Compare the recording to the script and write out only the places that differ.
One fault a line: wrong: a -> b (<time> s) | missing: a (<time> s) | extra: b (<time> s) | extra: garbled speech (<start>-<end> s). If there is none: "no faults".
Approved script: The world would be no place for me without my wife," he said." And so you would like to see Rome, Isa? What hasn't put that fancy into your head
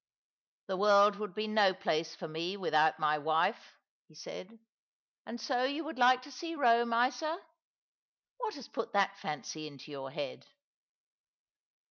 wrong: hasn't -> has (8.5 s)